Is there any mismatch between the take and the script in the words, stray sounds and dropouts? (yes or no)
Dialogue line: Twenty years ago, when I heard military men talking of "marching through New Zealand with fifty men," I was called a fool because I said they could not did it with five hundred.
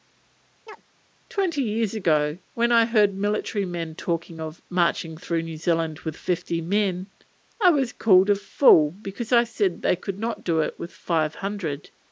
yes